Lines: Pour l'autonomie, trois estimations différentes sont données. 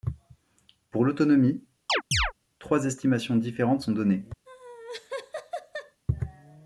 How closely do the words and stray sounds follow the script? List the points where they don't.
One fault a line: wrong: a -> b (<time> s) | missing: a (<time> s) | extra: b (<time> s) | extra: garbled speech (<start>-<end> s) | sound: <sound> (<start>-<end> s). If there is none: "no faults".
sound: chirp (1.9-2.3 s)
sound: laugh (4.5-6.0 s)